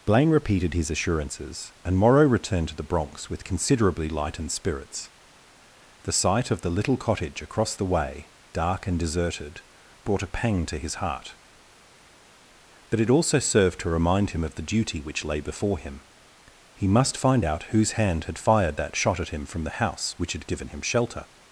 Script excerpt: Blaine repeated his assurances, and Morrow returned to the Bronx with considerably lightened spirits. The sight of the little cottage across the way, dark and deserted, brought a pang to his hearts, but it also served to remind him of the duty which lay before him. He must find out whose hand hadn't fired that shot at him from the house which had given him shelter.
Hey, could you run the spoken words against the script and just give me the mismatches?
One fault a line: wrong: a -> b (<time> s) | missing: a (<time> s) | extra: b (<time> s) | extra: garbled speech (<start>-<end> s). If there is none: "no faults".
wrong: hearts -> heart (10.9 s)
wrong: hadn't -> had (18.3 s)